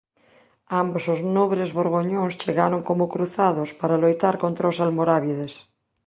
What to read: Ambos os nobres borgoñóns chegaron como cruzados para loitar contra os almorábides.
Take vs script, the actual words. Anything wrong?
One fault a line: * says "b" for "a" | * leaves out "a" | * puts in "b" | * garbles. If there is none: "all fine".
all fine